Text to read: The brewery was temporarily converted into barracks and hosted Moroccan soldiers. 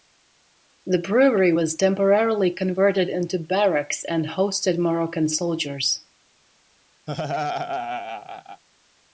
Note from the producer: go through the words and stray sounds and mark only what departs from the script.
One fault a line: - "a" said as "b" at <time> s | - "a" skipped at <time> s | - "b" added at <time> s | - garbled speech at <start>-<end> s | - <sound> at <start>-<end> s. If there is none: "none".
- laugh at 7.1-8.6 s